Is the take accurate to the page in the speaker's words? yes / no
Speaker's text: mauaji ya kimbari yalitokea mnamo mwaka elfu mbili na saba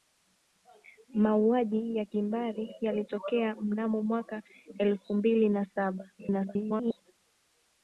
no